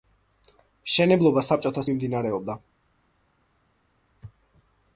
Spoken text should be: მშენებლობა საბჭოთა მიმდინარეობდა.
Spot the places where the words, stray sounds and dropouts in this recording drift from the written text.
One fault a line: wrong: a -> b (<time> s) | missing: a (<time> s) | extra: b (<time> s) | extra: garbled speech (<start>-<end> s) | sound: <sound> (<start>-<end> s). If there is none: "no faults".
no faults